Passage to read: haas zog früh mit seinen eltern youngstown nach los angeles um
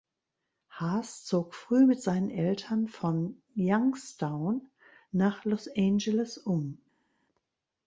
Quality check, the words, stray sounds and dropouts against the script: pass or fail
fail